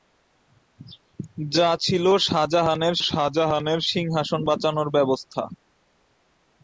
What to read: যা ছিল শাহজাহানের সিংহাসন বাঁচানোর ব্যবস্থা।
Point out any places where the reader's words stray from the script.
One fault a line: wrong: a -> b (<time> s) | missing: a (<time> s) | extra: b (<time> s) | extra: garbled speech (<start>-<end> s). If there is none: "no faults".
extra: শাহজাহানের (3.1 s)